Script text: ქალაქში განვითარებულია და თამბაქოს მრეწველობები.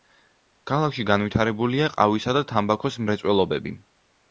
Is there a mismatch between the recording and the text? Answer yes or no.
yes